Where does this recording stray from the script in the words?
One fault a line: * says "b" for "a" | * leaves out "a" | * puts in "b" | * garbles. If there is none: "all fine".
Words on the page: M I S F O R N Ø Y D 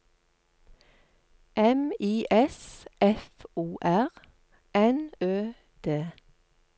* leaves out "Y"